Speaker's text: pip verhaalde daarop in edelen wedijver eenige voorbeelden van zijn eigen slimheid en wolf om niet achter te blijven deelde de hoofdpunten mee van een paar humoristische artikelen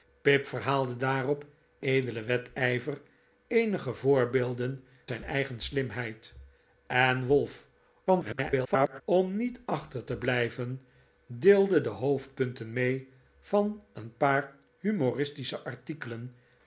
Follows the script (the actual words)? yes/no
no